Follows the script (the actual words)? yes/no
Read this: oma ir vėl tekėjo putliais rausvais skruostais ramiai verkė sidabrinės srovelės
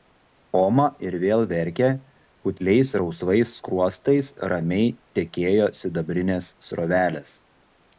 no